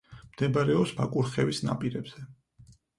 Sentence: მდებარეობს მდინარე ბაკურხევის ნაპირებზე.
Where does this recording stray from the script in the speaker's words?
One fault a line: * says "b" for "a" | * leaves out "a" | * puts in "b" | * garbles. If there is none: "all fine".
* leaves out "მდინარე"